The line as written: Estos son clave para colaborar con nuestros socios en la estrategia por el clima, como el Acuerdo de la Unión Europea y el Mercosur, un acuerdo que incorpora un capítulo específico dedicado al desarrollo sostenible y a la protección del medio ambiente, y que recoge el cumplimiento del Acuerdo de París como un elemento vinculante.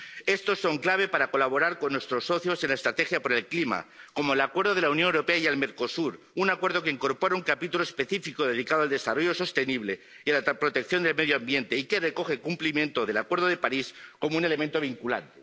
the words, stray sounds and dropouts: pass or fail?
pass